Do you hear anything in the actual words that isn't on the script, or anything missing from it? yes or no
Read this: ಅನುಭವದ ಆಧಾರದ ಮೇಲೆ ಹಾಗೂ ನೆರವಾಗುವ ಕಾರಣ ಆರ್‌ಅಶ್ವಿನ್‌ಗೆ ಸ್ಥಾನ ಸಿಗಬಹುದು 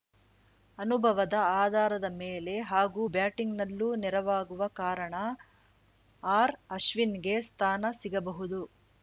yes